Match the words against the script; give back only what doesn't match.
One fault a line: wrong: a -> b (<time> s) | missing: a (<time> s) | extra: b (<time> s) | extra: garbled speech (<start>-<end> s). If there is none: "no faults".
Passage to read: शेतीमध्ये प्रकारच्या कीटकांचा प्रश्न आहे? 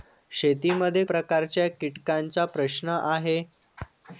no faults